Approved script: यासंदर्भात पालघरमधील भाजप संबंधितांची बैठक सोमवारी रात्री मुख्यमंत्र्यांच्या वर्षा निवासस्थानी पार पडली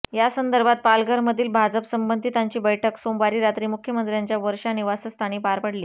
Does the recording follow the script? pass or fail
pass